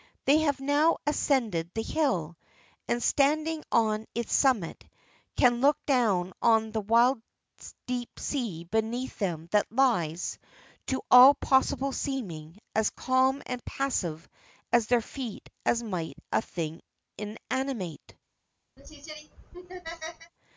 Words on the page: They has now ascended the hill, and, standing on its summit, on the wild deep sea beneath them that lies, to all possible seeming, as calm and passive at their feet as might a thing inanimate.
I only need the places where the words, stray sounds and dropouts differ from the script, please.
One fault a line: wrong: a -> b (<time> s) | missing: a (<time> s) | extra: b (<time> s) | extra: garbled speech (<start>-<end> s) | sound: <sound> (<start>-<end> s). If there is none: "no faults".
wrong: has -> have (0.4 s)
extra: can look down (5.3 s)
sound: laugh (18.8-20.3 s)